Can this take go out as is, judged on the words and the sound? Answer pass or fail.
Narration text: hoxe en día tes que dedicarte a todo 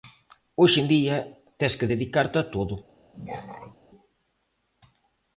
fail